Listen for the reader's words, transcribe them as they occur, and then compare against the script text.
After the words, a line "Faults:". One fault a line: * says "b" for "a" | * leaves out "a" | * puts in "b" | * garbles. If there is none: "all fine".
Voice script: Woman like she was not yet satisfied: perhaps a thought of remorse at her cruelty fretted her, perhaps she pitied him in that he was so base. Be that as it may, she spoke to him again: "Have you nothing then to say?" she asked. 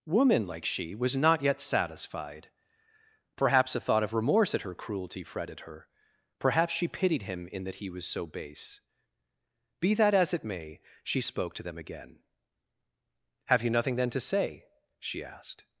Woman like she was not yet satisfied: perhaps a thought of remorse at her cruelty fretted her, perhaps she pitied him in that he was so base. Be that as it may, she spoke to them again: "Have you nothing then to say?" she asked.
Faults:
* says "them" for "him"